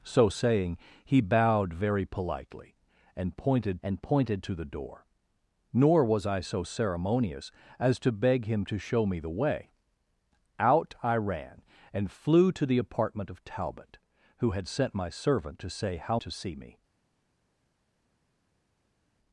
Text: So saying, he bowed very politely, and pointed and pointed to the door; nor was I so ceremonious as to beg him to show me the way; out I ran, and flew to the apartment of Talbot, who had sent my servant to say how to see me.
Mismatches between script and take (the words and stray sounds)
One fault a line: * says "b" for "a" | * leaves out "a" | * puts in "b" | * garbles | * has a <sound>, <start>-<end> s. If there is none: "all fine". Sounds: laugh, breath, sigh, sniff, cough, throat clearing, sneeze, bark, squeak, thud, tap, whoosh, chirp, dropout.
all fine